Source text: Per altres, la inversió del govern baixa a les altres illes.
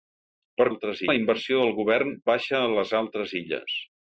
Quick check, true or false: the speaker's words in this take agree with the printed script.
true